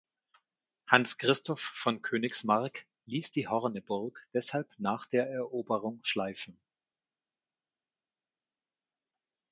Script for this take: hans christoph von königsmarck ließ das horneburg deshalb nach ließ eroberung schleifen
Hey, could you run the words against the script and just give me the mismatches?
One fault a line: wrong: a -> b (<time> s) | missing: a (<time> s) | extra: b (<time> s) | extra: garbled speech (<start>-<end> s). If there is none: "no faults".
wrong: das -> die (3.3 s)
wrong: ließ -> der (5.1 s)